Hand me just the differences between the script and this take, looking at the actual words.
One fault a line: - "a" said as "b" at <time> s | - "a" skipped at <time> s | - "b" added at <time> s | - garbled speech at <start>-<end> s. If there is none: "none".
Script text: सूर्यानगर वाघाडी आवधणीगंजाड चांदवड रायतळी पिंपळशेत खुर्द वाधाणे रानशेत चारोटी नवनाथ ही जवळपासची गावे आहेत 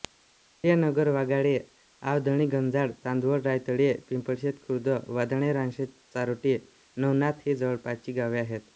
none